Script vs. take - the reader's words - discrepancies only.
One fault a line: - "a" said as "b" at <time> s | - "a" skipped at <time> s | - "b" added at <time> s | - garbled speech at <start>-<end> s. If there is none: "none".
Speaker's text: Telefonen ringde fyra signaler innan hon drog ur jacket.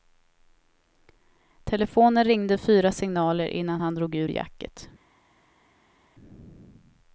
- "hon" said as "han" at 3.8 s